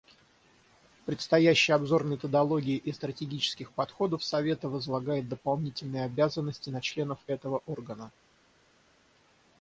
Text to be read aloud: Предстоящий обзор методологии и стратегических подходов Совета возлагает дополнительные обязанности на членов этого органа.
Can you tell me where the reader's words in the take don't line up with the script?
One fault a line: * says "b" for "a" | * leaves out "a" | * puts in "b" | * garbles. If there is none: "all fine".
all fine